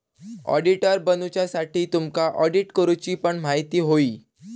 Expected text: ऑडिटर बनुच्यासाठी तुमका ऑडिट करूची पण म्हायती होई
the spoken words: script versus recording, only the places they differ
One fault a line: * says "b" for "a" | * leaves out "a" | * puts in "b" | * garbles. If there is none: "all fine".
all fine